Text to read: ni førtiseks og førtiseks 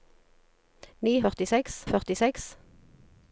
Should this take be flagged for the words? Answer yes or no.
no